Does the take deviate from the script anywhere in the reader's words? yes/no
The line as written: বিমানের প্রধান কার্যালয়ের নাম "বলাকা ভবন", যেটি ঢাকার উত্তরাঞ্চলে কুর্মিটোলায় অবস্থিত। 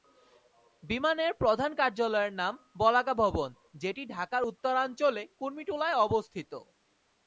no